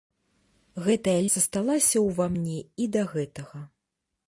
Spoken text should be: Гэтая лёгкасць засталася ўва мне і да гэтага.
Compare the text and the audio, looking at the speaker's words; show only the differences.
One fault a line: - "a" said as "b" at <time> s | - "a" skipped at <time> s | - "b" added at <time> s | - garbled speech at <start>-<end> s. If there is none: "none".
- "лёгкасць" skipped at 1.2 s